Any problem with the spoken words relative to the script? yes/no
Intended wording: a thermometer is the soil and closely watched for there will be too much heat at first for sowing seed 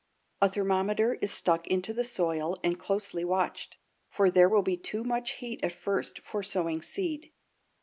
yes